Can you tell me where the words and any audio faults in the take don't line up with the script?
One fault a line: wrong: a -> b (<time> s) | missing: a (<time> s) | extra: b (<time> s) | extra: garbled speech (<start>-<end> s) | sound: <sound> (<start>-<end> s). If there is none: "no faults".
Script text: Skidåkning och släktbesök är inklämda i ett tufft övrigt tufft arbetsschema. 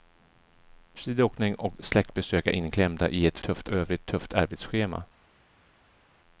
no faults